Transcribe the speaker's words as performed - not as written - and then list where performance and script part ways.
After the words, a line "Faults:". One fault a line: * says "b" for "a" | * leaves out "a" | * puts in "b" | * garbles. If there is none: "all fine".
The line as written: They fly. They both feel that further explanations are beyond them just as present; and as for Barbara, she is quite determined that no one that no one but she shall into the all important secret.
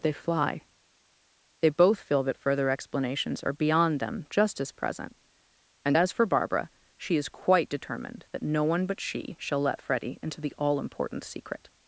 They fly. They both feel that further explanations are beyond them just as present; and as for Barbara, she is quite determined that no one but she shall let Freddy into the all important secret.
Faults:
* leaves out "that no one"
* puts in "let Freddy"